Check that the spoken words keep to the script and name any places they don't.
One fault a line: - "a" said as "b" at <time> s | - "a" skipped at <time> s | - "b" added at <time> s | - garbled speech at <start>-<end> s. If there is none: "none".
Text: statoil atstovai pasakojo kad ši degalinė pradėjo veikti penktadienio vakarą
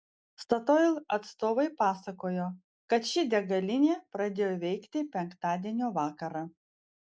none